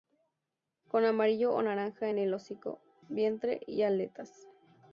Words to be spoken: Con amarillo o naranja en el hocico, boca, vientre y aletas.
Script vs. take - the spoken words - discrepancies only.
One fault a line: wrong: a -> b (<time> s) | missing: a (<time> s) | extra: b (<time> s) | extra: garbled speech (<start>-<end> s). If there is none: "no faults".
missing: boca (2.8 s)